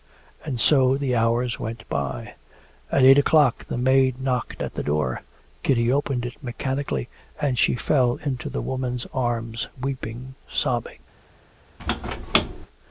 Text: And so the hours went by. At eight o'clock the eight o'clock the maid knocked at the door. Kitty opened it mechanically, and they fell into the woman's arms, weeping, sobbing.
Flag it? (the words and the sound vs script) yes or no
yes